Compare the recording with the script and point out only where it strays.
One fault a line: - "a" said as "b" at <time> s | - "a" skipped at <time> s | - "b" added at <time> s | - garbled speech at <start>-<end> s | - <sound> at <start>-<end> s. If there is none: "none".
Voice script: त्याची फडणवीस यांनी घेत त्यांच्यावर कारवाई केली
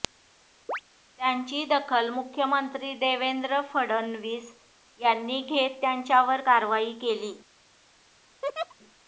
- chirp at 0.7-0.8 s
- "दखल मुख्यमंत्री देवेंद्र" added at 1.7 s
- laugh at 8.4-8.7 s